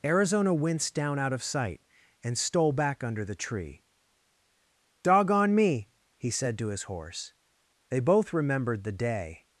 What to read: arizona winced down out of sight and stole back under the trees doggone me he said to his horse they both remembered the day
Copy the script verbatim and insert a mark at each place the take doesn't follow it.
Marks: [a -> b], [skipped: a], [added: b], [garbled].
arizona winced down out of sight and stole back under the [trees -> tree] doggone me he said to his horse they both remembered the day